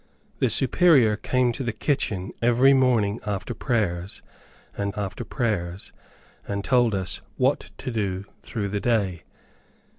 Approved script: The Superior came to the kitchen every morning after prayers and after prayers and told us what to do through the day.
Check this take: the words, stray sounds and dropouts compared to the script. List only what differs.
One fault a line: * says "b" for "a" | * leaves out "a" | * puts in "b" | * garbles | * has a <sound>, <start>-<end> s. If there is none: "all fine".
all fine